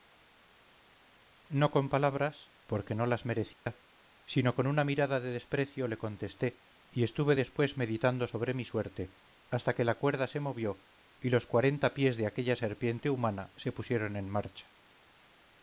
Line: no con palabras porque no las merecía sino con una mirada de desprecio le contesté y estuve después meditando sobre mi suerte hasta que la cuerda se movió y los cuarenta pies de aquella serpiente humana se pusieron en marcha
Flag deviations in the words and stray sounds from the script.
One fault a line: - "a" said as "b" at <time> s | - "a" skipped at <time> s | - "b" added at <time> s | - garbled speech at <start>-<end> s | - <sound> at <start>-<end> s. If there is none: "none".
- dropout at 3.5-3.7 s